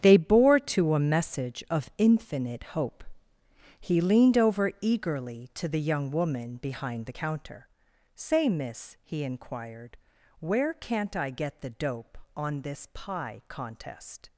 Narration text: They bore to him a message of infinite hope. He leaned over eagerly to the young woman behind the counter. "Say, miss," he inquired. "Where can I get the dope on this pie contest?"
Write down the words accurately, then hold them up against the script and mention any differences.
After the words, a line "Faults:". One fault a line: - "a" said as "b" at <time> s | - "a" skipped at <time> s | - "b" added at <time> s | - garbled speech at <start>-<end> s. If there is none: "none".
They bore to a message of infinite hope. He leaned over eagerly to the young woman behind the counter. "Say, miss," he inquired. "Where can't I get the dope on this pie contest?"
Faults:
- "him" skipped at 0.9 s
- "can" said as "can't" at 10.7 s